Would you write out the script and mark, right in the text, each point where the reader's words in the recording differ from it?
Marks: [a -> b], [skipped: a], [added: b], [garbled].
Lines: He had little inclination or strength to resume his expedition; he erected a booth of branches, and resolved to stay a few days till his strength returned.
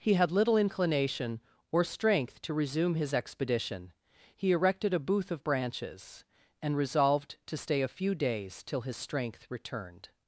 He had little inclination or strength to resume his expedition; he erected a booth of branches, and resolved to stay a few days till his strength returned.